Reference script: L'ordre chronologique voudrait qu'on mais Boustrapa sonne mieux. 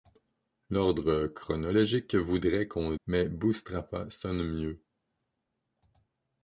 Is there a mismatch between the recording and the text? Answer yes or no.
no